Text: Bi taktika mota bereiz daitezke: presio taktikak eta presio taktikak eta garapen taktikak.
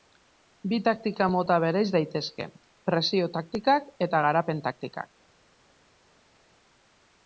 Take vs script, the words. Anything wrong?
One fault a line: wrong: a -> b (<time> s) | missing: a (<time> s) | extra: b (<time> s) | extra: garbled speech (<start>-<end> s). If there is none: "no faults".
missing: presio taktikak eta (4.2 s)